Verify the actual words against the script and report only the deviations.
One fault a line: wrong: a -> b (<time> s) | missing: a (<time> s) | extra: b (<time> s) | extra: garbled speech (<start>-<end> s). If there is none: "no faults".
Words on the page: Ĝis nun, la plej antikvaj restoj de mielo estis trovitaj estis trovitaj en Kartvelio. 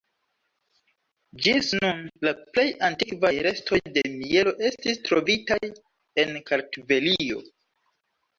missing: estis trovitaj (5.6 s)